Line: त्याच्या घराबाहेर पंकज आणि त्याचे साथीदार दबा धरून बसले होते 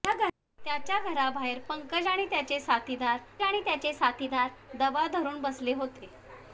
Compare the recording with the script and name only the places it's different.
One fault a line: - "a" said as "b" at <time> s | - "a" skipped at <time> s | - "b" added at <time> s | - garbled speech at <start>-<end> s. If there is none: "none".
- "आणि त्याचे साथीदार" added at 3.4 s